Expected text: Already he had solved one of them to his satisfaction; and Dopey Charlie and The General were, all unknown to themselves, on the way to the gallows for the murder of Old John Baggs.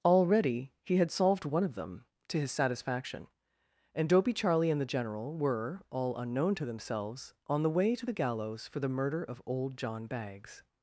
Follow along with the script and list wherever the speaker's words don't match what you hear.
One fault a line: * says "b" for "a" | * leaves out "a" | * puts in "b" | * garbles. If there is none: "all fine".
all fine